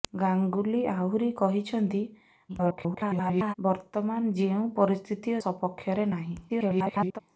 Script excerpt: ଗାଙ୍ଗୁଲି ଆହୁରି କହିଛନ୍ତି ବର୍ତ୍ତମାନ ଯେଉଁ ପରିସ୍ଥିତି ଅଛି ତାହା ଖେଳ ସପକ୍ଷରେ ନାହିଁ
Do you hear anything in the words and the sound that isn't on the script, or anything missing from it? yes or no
yes